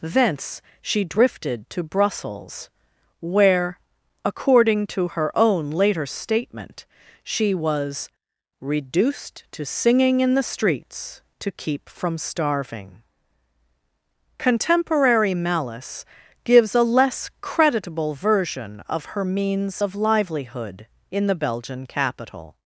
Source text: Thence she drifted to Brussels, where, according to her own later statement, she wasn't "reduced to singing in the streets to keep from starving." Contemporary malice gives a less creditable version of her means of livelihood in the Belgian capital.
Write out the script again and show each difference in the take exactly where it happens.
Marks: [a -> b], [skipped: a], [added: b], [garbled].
Thence she drifted to Brussels, where, according to her own later statement, she [wasn't -> was] "reduced to singing in the streets to keep from starving." Contemporary malice gives a less creditable version of her means of livelihood in the Belgian capital.